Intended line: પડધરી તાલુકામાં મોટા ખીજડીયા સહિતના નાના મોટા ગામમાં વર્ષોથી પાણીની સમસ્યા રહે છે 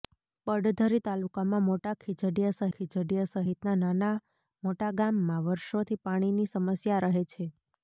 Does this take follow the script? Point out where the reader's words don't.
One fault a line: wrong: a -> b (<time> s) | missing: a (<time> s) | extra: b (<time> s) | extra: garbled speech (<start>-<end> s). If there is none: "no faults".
extra: ખીજડીયા (2.8 s)